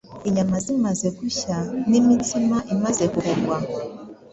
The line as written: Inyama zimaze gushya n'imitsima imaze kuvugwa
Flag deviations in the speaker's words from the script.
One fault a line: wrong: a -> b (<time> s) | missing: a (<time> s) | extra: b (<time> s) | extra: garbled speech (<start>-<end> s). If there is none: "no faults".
no faults